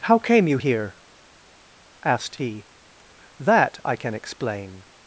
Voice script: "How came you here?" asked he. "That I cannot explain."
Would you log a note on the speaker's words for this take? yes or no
yes